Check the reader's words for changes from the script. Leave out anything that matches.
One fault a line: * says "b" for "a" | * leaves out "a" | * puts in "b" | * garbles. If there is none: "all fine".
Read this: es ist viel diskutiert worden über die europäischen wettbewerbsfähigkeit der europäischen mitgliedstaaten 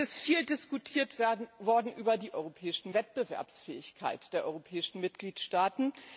all fine